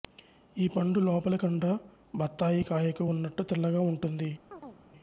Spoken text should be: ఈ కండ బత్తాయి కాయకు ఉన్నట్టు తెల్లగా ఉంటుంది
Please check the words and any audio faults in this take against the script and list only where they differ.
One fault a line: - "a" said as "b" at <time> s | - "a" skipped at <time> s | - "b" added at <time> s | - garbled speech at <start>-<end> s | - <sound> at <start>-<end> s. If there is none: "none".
- "పండు లోపలి" added at 0.7 s
- chirp at 4.5-4.8 s